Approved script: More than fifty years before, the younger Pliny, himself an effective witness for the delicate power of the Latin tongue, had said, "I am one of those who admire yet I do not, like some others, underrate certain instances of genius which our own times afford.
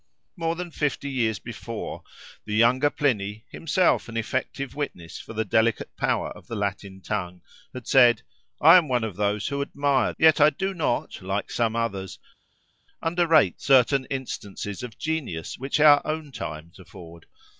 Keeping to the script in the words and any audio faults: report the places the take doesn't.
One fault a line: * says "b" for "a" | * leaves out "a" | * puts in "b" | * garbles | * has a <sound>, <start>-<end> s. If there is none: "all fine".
all fine